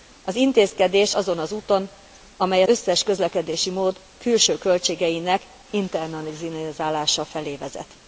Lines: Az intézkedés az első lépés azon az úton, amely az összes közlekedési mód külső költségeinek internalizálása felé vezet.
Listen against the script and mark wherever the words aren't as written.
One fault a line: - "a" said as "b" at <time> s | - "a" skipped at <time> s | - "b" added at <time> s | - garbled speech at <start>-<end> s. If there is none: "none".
- "az első lépés" skipped at 1.1 s
- "az" skipped at 2.6 s